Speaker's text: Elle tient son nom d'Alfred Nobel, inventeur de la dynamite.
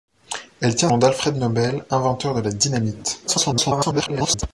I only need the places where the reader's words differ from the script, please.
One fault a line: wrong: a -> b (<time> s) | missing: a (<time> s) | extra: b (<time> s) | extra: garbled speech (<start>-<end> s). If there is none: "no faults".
missing: son (0.9 s)
extra: garbled speech (3.3-4.4 s)